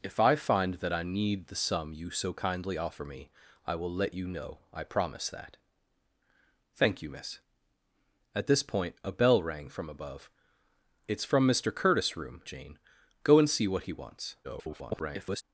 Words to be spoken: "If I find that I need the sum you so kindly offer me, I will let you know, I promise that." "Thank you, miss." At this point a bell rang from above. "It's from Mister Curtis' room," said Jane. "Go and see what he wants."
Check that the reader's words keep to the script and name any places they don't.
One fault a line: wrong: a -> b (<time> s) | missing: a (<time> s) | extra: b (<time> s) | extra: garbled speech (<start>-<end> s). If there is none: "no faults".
missing: said (12.4 s)
extra: garbled speech (14.4-15.4 s)